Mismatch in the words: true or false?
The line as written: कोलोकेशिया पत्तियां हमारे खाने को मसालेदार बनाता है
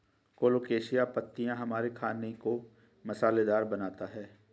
false